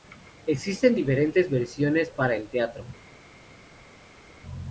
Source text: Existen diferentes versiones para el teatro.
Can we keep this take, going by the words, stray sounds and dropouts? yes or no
yes